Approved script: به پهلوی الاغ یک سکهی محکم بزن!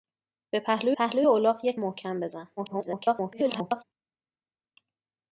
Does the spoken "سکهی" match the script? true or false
false